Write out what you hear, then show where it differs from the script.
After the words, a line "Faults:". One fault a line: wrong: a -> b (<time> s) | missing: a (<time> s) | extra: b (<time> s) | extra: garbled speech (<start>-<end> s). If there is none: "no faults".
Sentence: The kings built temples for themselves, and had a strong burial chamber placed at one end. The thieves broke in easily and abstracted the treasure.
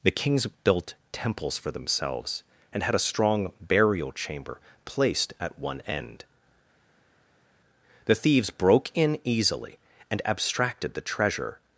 The kings built temples for themselves, and had a strong burial chamber placed at one end. The thieves broke in easily and abstracted the treasure.
Faults:
no faults